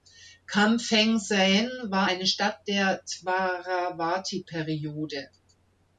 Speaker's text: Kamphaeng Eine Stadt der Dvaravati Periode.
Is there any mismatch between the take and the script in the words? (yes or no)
yes